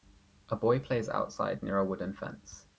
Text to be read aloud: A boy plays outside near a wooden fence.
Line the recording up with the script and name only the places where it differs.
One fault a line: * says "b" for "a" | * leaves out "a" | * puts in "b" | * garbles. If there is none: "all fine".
all fine